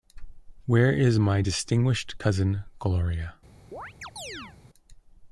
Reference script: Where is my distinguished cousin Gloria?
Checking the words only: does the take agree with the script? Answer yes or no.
yes